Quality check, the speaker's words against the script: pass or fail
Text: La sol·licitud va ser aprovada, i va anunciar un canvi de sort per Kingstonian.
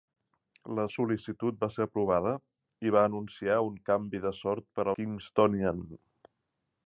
pass